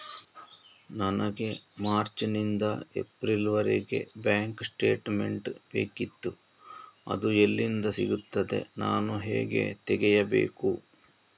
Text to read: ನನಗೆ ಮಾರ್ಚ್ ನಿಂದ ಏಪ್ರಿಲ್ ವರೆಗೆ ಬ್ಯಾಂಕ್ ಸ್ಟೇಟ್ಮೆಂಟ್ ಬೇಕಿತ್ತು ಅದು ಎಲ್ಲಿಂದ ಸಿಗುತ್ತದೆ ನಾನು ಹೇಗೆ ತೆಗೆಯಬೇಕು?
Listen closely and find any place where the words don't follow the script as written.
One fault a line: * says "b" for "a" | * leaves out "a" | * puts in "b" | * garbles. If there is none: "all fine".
all fine